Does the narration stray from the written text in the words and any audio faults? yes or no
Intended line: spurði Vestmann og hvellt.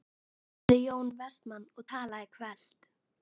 yes